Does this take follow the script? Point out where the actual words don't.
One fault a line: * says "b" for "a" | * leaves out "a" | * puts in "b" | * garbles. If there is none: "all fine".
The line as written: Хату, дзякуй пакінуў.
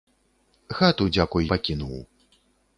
all fine